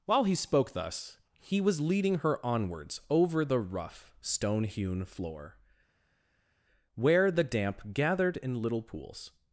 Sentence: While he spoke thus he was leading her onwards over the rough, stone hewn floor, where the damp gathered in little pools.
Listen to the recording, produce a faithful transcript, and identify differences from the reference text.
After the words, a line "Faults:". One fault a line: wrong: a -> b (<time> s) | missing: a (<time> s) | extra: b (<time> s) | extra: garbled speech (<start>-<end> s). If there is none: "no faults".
While he spoke thus he was leading her onwards over the rough, stone hewn floor, where the damp gathered in little pools.
Faults:
no faults